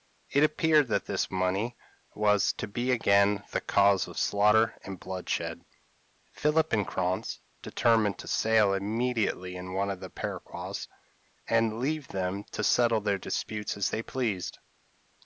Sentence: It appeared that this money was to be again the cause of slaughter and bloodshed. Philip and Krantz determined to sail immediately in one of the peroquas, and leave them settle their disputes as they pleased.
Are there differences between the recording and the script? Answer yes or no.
yes